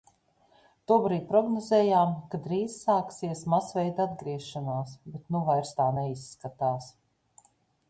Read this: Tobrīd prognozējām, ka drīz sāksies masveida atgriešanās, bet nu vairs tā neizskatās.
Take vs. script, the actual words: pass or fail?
pass